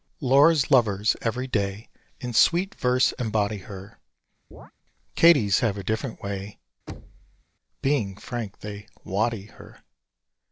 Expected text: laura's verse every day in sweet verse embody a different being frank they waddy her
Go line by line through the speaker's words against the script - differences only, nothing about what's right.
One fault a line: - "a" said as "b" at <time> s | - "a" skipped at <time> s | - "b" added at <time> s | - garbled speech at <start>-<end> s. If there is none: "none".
- "verse" said as "lovers" at 0.7 s
- "her katie's have" added at 3.6 s
- "way" added at 6.2 s